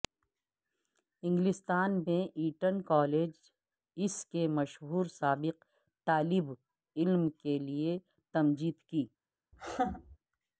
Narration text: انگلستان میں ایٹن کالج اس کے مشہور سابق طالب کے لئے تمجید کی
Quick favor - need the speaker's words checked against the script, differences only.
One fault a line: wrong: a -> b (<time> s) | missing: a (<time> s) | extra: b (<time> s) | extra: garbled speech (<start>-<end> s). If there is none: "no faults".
extra: علم (7.0 s)